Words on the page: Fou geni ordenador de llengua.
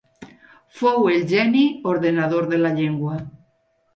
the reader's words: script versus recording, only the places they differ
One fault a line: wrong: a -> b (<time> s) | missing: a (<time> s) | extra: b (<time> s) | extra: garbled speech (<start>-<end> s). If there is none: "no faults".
extra: el (1.1 s)
extra: la (2.6 s)